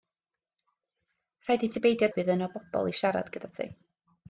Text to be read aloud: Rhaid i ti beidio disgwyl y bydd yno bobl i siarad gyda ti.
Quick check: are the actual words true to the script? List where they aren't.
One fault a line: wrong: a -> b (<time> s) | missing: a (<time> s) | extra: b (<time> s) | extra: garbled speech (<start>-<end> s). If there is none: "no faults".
missing: disgwyl (2.1 s)